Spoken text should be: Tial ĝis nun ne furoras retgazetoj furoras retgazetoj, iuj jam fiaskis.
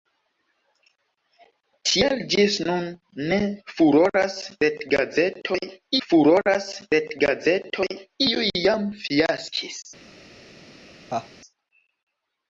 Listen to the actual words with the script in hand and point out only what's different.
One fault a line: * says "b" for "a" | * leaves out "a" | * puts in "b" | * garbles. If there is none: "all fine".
all fine